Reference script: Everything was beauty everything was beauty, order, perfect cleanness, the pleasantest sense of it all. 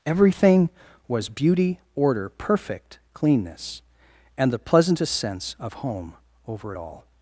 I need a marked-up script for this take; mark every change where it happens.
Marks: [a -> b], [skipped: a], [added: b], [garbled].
Everything was beauty [skipped: everything was beauty,] order, perfect cleanness, [added: and] the pleasantest sense of [added: home over] it all.